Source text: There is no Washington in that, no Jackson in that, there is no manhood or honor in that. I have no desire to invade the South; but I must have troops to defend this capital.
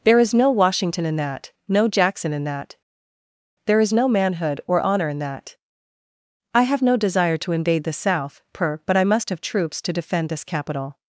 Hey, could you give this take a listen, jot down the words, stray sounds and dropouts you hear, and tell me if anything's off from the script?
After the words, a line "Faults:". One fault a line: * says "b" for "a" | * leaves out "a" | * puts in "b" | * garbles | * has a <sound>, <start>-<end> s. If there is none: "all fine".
There is no Washington in that, no Jackson in that, there is no manhood or honor in that. I have no desire to invade the South; per but I must have troops to defend this capital.
Faults:
* puts in "per"